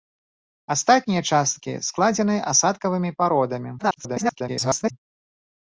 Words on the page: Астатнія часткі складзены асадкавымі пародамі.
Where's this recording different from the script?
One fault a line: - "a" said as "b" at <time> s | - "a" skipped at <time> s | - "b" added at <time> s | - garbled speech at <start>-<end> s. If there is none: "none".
- garbled speech at 3.8-4.9 s